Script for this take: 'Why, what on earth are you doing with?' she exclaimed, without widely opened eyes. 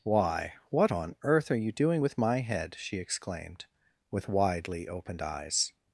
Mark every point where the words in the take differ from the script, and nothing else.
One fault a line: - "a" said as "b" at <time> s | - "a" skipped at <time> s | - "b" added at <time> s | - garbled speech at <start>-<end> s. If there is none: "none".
- "my head" added at 2.2 s
- "without" said as "with" at 4.1 s